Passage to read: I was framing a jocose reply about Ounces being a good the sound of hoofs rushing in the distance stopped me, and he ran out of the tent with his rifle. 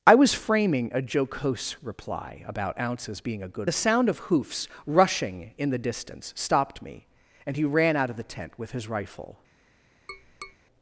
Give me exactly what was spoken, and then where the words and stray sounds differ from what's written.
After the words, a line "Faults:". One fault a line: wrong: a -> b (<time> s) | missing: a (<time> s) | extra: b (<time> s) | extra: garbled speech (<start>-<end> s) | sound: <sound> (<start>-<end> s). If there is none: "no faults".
I was framing a jocose reply about Ounces being a good the sound of hoofs rushing in the distance stopped me, and he ran out of the tent with his rifle.
Faults:
sound: tap (10.1-10.6 s)